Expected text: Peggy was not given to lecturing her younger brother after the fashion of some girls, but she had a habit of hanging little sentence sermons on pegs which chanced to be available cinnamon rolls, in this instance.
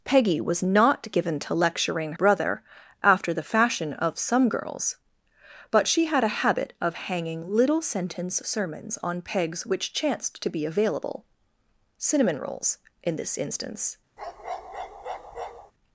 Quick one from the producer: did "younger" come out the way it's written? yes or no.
no